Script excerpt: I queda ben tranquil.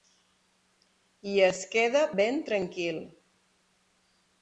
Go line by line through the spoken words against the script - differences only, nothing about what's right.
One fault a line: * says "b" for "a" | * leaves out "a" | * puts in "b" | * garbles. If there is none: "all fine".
* puts in "es"